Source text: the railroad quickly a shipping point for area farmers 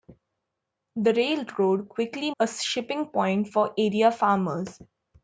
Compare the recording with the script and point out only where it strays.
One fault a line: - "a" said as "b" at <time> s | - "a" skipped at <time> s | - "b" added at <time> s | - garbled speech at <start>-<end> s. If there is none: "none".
none